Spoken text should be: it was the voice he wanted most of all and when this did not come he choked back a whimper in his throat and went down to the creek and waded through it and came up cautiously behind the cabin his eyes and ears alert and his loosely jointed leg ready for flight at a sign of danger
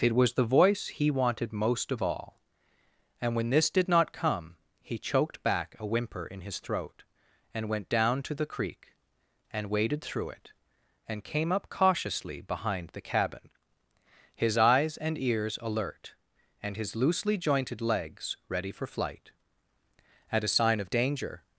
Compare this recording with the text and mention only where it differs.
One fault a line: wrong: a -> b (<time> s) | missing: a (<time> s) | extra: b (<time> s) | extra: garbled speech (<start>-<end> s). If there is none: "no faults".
wrong: leg -> legs (17.8 s)